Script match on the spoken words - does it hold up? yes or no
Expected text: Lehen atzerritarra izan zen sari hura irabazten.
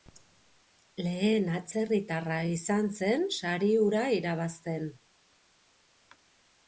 yes